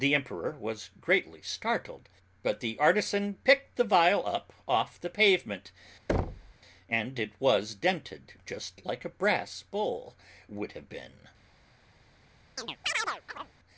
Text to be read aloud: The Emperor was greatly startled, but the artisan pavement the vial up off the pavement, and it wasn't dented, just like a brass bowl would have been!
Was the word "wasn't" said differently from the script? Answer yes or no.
yes